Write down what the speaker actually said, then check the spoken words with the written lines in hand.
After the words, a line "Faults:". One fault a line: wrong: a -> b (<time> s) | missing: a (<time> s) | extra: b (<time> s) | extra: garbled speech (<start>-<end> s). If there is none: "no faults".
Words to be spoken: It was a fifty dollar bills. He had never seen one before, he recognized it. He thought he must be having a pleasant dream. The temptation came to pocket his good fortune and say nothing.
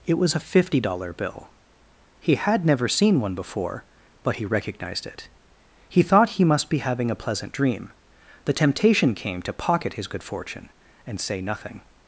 It was a fifty dollar bill. He had never seen one before, but he recognized it. He thought he must be having a pleasant dream. The temptation came to pocket his good fortune and say nothing.
Faults:
wrong: bills -> bill (1.1 s)
extra: but (4.2 s)